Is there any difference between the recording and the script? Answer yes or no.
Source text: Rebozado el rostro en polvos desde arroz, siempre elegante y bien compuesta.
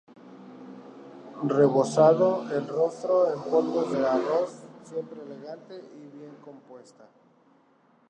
yes